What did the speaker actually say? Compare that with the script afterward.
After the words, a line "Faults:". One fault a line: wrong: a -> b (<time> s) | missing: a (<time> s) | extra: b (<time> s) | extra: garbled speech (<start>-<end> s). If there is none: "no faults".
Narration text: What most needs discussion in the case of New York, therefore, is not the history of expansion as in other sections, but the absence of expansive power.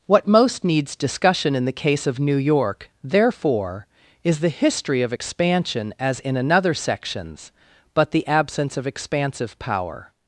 What most needs discussion in the case of New York, therefore, is the history of expansion as in another sections, but the absence of expansive power.
Faults:
missing: not (4.4 s)
wrong: other -> another (6.3 s)